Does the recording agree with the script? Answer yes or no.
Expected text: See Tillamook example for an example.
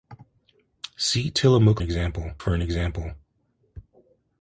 yes